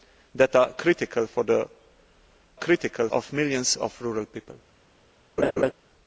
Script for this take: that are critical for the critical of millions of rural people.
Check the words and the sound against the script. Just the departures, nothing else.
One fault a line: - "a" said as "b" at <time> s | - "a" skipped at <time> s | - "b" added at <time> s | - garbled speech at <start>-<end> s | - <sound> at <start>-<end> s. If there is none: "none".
- laugh at 5.4-5.7 s